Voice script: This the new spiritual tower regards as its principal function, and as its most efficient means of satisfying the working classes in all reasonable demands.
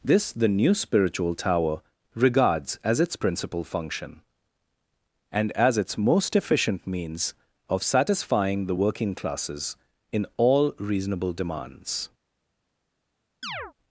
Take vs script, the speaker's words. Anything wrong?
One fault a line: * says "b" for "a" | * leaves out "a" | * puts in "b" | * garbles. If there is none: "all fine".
all fine